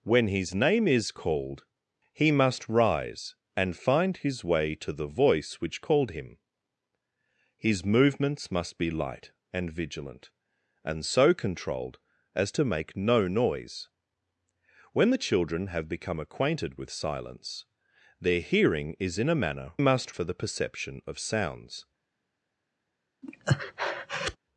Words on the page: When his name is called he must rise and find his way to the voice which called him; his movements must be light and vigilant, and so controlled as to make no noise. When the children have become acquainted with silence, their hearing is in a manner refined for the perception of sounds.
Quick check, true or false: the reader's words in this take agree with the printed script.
false